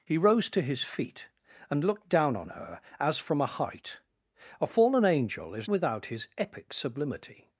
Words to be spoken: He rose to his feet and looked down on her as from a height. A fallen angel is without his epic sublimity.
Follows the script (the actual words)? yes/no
yes